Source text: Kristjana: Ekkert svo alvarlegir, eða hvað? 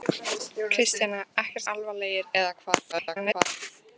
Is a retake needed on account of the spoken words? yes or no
yes